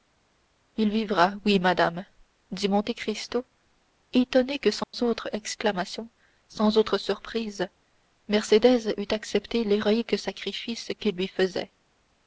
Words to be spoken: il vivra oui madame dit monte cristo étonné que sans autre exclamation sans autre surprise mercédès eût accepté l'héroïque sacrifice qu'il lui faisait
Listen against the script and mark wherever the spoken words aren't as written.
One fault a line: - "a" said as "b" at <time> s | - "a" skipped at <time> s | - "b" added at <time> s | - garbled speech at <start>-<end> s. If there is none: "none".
none